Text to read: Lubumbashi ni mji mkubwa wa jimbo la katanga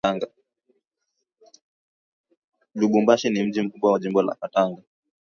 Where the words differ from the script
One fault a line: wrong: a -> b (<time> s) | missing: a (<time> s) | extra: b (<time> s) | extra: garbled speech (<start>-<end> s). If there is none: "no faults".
no faults